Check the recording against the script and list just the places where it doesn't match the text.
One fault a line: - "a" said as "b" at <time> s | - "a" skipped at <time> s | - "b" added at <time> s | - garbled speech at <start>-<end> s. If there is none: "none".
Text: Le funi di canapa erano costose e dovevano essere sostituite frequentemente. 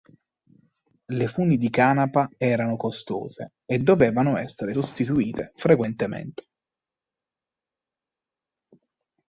none